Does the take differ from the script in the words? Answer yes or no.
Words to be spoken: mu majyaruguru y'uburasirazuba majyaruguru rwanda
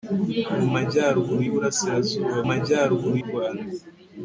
no